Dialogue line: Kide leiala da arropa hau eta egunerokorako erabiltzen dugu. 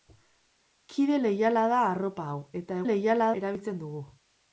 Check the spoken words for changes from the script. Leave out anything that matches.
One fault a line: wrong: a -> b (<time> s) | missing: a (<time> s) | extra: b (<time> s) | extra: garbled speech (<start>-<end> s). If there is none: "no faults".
wrong: egunerokorako -> leiala (2.8 s)